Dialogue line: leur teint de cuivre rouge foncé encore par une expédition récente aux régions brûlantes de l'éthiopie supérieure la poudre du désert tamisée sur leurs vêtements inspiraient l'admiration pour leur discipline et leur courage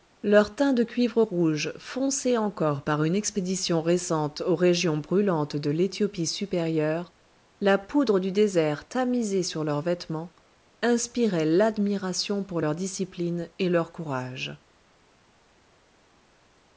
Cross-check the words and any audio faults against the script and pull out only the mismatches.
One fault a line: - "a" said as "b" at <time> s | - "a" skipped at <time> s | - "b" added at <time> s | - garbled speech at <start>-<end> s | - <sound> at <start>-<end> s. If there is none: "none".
none